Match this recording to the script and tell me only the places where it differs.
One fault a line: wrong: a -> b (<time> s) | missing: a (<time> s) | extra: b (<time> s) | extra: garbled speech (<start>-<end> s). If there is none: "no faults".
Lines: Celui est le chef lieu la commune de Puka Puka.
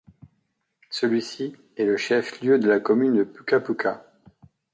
extra: ci (1.2 s)
extra: de (2.6 s)